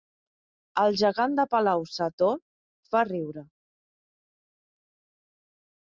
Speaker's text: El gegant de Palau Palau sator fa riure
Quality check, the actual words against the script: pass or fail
fail